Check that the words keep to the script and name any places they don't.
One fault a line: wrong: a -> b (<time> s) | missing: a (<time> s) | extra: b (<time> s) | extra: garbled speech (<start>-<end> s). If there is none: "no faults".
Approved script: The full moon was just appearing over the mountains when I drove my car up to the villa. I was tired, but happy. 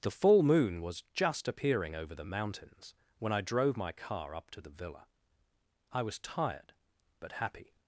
no faults